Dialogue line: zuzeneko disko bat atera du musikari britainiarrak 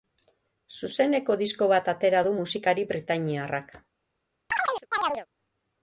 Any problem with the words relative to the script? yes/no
no